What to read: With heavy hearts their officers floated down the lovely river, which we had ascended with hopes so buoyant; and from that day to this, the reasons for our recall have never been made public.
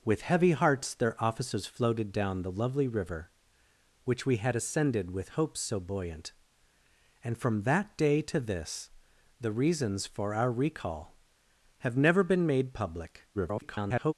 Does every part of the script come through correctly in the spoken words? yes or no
no